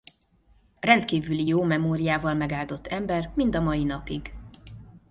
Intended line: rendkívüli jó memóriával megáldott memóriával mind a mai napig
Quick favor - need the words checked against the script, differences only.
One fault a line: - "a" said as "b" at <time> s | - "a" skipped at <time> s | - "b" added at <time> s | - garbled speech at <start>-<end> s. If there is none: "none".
- "memóriával" said as "ember" at 2.9 s